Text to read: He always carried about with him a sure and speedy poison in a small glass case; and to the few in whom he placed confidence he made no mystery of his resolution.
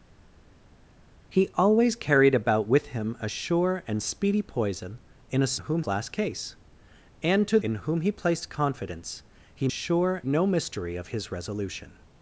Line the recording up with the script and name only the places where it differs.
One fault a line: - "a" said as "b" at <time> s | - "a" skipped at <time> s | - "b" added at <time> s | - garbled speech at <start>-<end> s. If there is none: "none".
- "small" said as "whom" at 5.6 s
- "the few" skipped at 7.6 s
- "made" said as "sure" at 9.7 s